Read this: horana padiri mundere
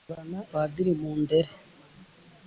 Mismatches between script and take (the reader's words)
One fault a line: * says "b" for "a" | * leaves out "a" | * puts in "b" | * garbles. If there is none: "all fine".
all fine